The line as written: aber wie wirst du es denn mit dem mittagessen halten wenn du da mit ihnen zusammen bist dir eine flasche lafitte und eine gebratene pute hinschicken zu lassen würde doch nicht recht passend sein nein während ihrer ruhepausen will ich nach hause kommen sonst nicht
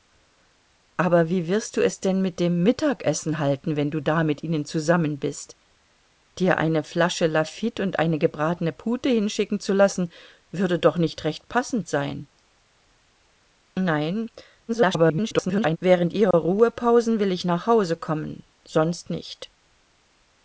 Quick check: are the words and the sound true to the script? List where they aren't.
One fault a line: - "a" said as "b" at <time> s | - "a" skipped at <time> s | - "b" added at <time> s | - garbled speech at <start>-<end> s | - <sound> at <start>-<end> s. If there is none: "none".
- garbled speech at 14.7-15.8 s
- dropout at 16.3-16.3 s